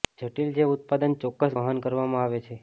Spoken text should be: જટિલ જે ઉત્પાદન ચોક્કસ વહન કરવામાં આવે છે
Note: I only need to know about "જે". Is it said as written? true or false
true